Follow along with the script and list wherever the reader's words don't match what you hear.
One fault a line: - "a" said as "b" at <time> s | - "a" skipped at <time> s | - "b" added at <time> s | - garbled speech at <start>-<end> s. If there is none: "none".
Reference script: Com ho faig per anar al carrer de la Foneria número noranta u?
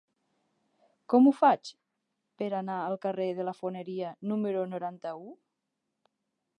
none